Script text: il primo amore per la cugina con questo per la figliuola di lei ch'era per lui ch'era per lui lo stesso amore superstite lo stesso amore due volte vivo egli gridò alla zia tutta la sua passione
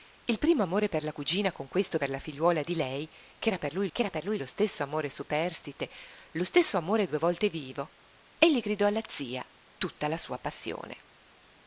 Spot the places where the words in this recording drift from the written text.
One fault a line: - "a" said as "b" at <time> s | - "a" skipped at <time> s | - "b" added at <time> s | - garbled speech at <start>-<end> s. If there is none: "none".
none